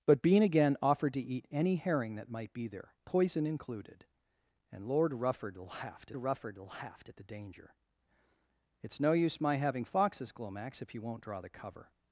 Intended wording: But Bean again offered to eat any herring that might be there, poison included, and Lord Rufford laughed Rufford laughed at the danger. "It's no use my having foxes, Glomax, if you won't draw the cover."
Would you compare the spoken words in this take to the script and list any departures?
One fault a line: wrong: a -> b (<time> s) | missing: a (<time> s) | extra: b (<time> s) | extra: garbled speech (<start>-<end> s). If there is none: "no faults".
no faults